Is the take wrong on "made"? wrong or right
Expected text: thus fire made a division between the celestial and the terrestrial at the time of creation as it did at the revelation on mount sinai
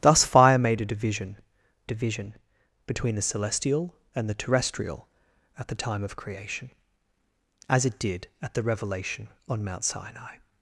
right